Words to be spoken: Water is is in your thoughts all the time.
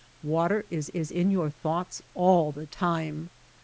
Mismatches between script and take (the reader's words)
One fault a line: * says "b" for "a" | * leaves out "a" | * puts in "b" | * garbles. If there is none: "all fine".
all fine